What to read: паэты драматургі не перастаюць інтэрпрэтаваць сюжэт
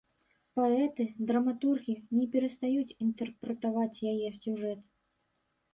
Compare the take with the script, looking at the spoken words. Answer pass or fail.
fail